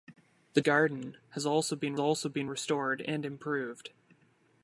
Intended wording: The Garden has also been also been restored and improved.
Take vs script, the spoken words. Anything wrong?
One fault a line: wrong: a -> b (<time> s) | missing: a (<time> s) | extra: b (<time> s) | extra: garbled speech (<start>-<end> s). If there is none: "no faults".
no faults